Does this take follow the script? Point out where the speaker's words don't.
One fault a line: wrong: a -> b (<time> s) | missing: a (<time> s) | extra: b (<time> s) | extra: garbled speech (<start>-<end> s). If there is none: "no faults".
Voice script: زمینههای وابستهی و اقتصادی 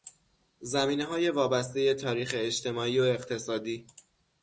extra: تاریخ اجتماعی (1.9 s)